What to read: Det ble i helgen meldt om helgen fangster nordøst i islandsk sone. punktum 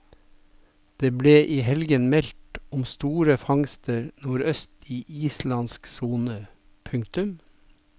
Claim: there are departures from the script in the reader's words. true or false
true